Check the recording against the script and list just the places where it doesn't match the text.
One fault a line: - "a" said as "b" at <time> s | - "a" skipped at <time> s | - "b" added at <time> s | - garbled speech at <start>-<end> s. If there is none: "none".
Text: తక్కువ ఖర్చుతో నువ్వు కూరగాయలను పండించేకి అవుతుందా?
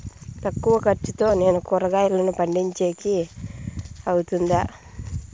- "నువ్వు" said as "నేను" at 1.3 s